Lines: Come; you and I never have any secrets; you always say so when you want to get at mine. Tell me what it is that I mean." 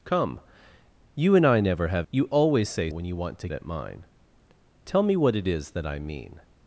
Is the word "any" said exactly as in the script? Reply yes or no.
no